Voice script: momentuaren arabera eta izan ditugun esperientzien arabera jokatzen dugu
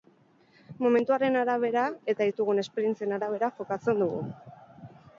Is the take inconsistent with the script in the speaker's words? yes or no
yes